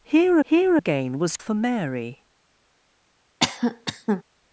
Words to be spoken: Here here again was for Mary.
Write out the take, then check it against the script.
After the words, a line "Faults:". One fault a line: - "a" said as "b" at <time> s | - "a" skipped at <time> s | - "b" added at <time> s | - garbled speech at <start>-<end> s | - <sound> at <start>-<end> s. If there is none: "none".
Here here again was for Mary.
Faults:
- cough at 3.4-4.2 s